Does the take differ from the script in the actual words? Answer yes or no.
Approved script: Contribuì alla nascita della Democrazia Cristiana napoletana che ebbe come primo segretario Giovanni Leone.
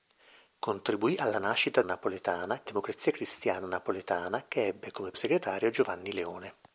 yes